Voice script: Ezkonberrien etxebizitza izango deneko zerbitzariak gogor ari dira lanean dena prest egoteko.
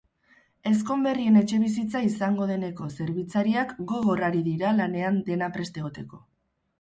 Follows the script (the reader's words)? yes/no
yes